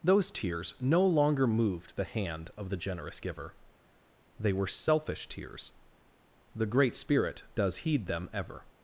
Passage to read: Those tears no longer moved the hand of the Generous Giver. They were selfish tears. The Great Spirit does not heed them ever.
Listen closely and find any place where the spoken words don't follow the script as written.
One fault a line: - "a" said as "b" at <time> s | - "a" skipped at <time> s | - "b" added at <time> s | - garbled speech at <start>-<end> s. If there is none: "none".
- "not" skipped at 7.8 s